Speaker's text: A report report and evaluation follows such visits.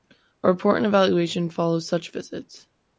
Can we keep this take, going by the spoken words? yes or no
no